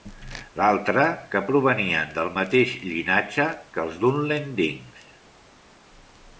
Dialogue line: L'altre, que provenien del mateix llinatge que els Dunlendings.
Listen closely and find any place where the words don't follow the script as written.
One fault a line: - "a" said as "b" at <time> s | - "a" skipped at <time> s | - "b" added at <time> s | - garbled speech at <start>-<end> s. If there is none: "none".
none